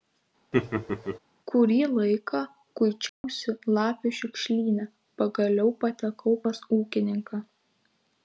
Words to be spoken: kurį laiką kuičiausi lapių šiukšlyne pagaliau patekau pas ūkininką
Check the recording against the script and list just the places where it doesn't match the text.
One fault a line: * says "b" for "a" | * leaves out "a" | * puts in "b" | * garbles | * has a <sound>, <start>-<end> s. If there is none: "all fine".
* has a laugh, 0.5-1.2 s
* has a dropout, 3.1-3.2 s